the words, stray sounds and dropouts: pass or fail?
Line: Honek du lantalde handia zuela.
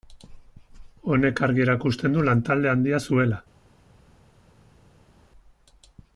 fail